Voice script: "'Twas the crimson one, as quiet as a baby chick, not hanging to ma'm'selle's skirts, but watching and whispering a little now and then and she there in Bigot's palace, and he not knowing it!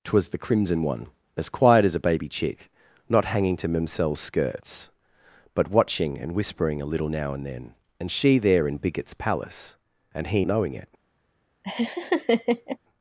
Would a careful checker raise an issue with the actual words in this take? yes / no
yes